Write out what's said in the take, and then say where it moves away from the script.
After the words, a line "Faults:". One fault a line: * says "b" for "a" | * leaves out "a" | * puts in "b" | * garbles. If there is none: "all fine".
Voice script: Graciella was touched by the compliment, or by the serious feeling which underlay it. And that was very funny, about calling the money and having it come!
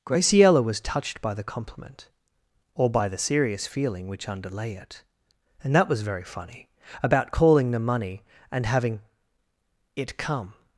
Graciella was touched by the compliment, or by the serious feeling which underlay it. And that was very funny, about calling the money and having it come!
Faults:
all fine